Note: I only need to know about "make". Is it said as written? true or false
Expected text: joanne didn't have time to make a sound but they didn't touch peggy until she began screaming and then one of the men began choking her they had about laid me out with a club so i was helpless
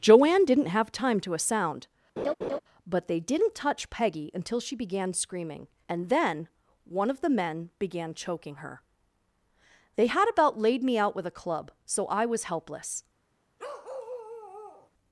false